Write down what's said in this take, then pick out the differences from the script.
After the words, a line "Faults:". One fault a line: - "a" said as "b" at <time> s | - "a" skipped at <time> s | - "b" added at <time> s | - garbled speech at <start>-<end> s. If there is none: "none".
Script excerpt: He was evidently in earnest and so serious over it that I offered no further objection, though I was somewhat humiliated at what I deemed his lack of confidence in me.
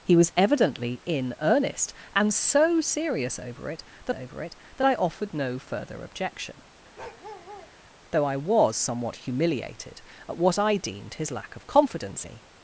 He was evidently in earnest and so serious over it that over it that I offered no further objection, though I was somewhat humiliated at what I deemed his lack of confidence me.
Faults:
- "over it that" added at 4.1 s
- "in" skipped at 12.3 s